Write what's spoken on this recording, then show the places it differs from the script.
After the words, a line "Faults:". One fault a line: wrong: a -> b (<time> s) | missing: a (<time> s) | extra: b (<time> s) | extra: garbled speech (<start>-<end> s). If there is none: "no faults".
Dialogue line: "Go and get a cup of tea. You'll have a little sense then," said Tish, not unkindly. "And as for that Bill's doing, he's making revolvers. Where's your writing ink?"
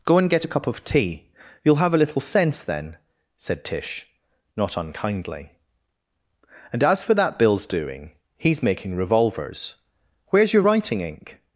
"Go and get a cup of tea. You'll have a little sense then," said Tish, not unkindly. "And as for that Bill's doing, he's making revolvers. Where's your writing ink?"
Faults:
no faults